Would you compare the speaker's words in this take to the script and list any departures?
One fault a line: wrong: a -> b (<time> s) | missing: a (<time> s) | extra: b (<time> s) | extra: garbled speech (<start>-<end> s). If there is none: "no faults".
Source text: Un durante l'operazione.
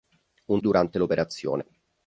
no faults